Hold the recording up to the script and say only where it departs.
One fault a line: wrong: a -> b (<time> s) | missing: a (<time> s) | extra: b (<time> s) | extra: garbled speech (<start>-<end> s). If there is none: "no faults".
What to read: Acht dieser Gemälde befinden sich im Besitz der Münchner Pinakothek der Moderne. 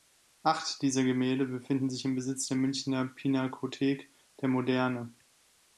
no faults